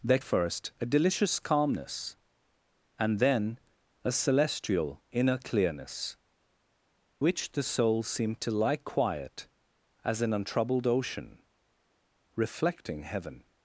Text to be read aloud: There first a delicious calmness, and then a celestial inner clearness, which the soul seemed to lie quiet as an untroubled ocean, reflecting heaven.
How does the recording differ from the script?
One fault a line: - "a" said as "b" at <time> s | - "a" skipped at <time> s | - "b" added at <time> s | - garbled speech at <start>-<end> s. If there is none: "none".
none